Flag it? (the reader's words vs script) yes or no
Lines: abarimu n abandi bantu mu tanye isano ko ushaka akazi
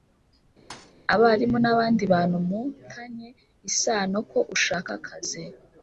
no